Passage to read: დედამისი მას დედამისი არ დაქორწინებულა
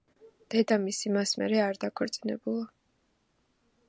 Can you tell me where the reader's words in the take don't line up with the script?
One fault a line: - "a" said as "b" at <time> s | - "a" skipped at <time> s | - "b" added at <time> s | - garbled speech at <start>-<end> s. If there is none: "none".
- "დედამისი" said as "მერე" at 1.4 s